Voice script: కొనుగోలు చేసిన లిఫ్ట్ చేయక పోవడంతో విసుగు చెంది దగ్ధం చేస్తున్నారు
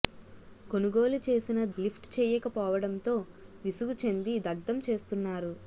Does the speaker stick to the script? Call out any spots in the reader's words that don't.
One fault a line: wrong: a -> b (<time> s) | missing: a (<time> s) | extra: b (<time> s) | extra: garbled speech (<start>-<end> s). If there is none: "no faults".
no faults